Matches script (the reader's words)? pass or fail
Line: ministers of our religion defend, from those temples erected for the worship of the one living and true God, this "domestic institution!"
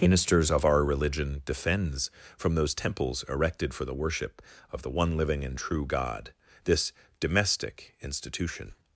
fail